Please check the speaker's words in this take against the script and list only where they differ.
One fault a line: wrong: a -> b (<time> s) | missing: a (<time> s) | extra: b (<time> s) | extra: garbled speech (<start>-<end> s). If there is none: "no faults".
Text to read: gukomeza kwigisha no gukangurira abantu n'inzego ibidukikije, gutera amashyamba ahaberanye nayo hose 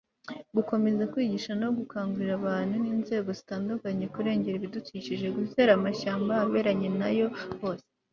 extra: zitandukanye kurengera (3.4 s)